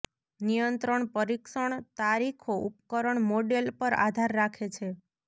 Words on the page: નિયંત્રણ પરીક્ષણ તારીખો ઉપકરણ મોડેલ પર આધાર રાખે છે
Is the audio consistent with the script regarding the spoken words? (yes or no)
yes